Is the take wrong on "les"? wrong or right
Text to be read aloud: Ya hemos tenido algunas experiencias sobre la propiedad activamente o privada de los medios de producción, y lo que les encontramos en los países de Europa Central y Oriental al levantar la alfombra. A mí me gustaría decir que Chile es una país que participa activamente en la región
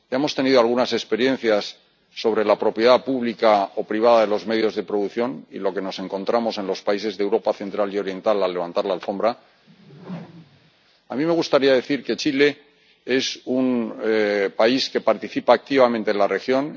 wrong